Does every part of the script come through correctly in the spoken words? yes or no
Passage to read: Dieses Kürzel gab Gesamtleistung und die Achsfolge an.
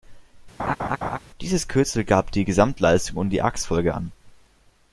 no